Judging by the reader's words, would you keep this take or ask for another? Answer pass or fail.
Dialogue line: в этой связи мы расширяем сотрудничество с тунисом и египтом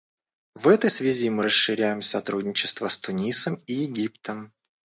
pass